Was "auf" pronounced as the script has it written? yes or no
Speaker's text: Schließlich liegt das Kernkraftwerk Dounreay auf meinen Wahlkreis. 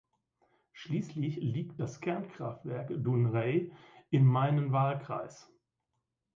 no